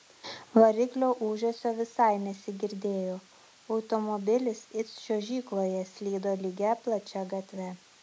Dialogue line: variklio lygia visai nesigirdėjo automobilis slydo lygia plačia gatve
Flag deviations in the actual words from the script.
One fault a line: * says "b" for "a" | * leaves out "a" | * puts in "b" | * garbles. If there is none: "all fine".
* says "ūžesio" for "lygia"
* puts in "it čiuožykloje"